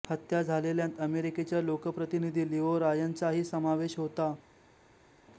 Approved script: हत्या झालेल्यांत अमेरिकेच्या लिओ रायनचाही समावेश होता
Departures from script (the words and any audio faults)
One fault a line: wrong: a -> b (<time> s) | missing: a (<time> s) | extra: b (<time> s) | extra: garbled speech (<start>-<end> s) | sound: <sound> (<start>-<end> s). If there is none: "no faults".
extra: लोकप्रतिनिधी (1.6 s)